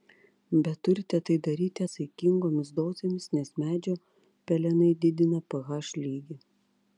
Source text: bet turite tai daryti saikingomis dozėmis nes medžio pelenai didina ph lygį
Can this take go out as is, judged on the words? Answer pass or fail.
pass